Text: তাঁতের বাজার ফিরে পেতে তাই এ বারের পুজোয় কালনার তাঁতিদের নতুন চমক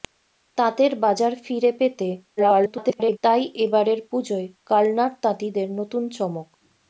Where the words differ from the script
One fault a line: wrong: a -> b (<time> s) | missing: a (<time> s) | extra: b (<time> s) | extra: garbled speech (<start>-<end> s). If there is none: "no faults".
extra: garbled speech (2.4-3.2 s)